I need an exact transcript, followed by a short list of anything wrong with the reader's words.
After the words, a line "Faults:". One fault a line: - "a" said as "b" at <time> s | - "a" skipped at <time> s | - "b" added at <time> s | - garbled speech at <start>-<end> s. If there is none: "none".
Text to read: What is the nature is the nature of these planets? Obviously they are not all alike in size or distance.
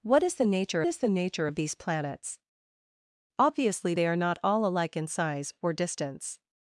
What is the nature is the nature of these planets? Obviously they are not all alike in size or distance.
Faults:
none